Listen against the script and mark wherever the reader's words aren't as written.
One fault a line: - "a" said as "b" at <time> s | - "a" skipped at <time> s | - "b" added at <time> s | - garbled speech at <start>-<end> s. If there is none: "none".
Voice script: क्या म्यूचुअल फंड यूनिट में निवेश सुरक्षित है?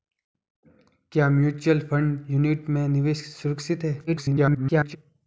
- garbled speech at 4.1-5.0 s